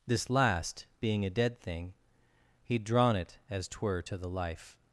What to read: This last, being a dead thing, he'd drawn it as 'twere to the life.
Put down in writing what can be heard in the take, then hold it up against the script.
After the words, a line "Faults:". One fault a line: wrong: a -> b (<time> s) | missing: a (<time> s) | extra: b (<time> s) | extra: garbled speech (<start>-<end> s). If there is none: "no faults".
This last, being a dead thing, he'd drawn it as 'twere to the life.
Faults:
no faults